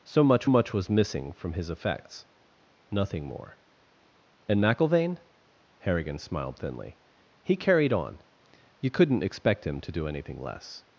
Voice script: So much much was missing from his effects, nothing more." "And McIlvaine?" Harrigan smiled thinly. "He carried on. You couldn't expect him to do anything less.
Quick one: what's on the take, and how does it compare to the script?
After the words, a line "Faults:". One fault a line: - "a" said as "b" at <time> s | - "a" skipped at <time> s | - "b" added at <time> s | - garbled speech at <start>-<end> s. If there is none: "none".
So much much was missing from his effects, nothing more." "And McIlvaine?" Harrigan smiled thinly. "He carried on. You couldn't expect him to do anything less.
Faults:
none